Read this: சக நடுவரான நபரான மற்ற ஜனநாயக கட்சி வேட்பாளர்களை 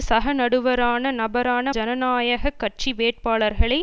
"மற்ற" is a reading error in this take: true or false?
true